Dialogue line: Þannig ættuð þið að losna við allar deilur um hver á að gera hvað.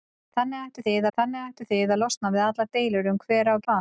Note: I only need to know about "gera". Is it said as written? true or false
false